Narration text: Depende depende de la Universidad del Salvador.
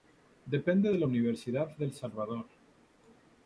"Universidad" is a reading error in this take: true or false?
false